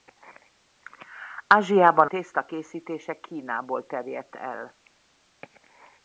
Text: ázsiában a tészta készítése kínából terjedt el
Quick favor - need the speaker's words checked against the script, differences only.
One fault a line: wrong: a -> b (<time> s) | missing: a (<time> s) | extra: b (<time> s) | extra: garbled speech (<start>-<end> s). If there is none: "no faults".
missing: a (2.1 s)